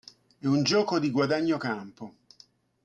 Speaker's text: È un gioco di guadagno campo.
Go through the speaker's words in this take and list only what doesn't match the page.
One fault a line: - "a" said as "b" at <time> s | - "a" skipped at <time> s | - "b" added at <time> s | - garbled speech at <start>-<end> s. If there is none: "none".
none